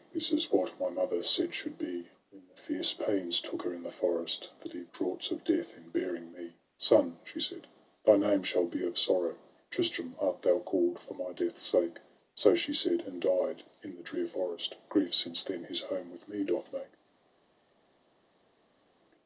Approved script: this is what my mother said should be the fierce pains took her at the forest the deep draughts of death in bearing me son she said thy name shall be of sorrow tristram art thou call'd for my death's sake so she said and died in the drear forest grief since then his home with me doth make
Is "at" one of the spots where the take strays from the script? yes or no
yes